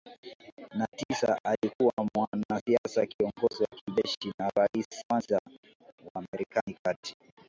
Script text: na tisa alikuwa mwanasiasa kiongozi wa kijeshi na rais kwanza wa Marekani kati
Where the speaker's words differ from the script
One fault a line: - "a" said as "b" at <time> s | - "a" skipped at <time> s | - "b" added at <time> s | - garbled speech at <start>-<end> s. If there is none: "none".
none